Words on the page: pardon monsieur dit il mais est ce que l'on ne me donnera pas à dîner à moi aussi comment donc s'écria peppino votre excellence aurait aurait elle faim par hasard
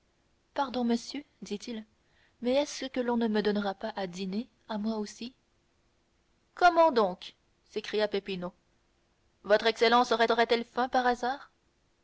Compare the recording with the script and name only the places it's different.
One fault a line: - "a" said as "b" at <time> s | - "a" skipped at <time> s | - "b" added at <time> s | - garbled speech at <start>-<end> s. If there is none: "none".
none